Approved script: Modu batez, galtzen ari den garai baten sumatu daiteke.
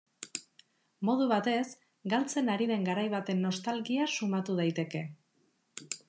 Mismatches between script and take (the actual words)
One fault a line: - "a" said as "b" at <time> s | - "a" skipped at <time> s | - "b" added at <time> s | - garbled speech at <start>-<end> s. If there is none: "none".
- "nostalgia" added at 3.5 s